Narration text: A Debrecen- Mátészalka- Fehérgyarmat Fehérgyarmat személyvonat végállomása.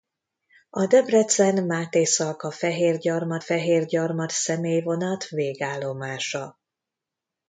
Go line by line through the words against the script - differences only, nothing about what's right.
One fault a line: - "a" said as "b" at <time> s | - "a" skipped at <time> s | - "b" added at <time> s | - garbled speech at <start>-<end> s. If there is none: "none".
none